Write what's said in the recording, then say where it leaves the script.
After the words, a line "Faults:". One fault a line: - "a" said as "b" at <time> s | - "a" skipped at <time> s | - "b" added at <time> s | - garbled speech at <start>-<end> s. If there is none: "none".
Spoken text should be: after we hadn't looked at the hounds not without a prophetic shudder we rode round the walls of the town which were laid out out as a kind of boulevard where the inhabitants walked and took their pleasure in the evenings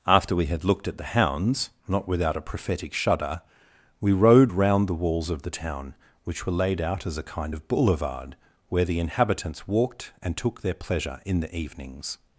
after we had looked at the hounds not without a prophetic shudder we rode round the walls of the town which were laid out as a kind of boulevard where the inhabitants walked and took their pleasure in the evenings
Faults:
- "hadn't" said as "had" at 0.5 s
- "out" skipped at 7.0 s